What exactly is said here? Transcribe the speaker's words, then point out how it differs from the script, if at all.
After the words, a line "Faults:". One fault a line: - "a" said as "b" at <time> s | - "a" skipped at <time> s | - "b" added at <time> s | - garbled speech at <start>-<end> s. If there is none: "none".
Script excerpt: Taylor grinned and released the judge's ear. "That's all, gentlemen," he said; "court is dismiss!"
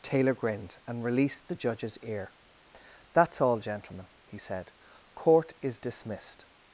Taylor grinned and released the judge's ear. "That's all, gentlemen," he said; "court is dismissed!"
Faults:
- "dismiss" said as "dismissed" at 5.8 s